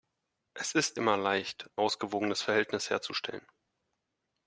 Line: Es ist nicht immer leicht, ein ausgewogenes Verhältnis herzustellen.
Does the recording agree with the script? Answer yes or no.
no